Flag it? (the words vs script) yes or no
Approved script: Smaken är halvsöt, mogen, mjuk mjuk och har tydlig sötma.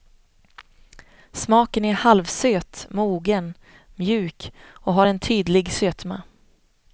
yes